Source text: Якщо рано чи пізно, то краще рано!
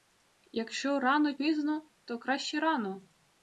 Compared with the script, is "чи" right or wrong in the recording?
wrong